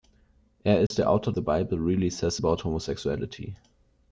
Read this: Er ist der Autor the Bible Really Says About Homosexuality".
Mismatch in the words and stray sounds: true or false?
true